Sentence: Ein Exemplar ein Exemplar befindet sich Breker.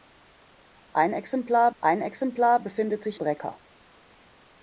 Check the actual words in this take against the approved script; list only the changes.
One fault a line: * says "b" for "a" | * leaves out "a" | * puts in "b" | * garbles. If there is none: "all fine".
all fine